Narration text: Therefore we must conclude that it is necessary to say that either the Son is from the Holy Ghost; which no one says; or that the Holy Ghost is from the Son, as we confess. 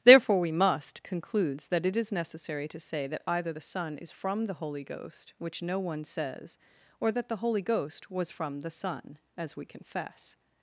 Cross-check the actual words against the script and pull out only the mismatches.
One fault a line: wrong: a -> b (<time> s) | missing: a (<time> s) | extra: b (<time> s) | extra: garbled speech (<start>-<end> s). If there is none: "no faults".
wrong: conclude -> concludes (1.0 s)
wrong: is -> was (8.1 s)